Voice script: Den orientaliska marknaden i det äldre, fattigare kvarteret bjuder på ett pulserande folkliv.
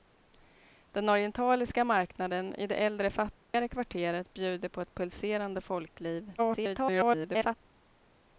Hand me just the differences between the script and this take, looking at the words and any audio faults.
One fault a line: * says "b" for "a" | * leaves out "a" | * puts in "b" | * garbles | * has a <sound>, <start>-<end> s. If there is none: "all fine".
* has a dropout, 3.4-3.5 s
* garbles